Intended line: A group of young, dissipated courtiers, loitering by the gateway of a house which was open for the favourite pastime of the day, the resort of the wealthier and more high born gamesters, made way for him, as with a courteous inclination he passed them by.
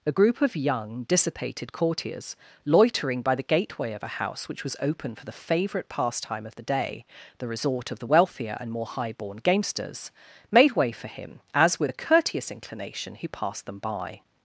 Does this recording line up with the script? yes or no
yes